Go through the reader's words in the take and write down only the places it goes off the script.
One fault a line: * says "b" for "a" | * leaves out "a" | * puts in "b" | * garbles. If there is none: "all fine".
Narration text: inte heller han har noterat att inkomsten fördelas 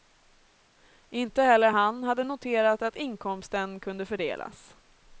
* says "hade" for "har"
* puts in "kunde"